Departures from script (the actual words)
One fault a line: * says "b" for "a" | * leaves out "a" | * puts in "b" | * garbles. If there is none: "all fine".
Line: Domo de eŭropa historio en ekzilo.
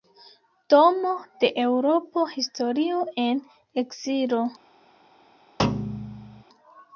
all fine